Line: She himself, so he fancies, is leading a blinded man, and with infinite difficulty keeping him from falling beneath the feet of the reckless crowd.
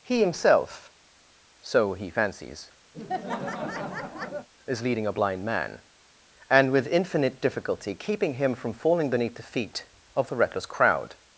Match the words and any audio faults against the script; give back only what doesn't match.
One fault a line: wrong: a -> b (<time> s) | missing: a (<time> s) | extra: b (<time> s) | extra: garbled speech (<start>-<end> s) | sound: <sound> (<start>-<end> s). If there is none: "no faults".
wrong: She -> He (0.0 s)
sound: laugh (2.9-4.5 s)
wrong: blinded -> blind (5.1 s)